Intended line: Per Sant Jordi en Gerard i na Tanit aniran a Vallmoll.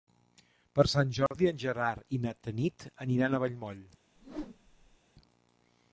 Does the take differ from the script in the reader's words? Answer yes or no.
no